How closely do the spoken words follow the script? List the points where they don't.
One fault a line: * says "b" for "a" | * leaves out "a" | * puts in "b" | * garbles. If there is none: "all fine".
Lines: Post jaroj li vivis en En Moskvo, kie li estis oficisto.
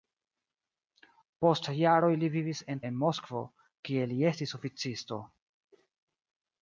all fine